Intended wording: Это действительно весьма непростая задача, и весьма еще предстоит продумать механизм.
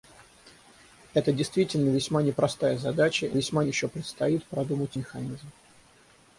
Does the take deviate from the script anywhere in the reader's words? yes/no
no